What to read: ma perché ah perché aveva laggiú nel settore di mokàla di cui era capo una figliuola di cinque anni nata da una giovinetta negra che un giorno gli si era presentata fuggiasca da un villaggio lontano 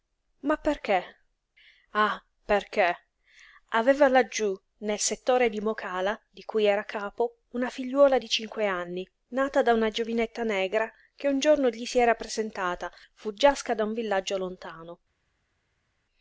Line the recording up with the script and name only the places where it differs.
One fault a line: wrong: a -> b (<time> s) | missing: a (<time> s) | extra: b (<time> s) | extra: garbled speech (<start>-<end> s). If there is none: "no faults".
no faults